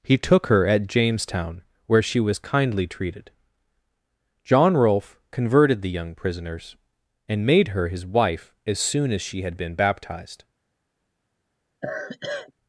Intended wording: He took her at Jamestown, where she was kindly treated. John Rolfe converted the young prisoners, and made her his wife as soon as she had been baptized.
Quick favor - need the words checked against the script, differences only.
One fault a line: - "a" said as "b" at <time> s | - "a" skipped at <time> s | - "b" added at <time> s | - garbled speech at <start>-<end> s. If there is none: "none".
none